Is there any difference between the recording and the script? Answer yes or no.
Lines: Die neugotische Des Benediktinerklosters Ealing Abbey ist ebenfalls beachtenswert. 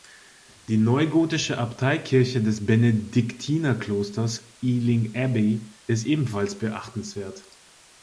yes